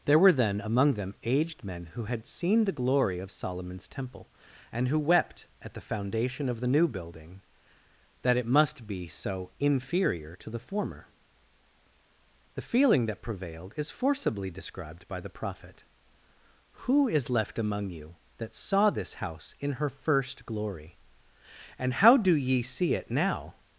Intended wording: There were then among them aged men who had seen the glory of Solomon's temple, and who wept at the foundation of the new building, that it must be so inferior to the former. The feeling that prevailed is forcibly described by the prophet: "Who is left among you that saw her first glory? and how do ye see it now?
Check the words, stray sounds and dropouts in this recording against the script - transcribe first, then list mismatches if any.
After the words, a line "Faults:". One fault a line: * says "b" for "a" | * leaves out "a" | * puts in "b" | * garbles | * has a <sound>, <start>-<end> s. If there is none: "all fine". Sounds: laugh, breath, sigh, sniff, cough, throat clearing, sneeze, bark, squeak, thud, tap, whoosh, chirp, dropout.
There were then among them aged men who had seen the glory of Solomon's temple, and who wept at the foundation of the new building, that it must be so inferior to the former. The feeling that prevailed is forcibly described by the prophet: "Who is left among you that saw this house in her first glory? and how do ye see it now?
Faults:
* puts in "this house in"